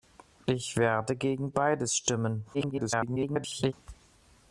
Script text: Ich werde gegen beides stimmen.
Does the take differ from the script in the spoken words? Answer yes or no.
yes